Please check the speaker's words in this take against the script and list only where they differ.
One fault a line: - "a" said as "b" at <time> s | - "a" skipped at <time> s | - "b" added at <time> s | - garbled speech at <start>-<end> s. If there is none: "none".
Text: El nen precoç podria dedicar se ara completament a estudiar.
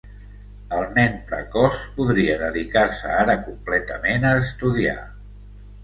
none